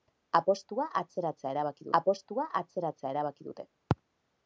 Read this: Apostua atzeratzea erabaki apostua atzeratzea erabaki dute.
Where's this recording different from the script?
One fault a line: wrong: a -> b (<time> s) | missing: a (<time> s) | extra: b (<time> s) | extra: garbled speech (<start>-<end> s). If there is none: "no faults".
no faults